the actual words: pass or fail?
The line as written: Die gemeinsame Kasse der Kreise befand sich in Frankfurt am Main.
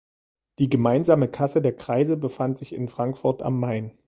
pass